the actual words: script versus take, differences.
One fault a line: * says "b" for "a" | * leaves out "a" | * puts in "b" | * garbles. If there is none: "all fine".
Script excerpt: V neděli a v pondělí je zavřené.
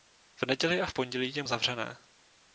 all fine